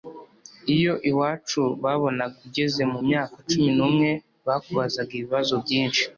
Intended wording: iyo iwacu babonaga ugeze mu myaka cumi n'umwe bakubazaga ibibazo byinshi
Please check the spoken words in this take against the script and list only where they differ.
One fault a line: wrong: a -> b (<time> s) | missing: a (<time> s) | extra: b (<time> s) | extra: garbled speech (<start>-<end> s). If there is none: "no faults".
no faults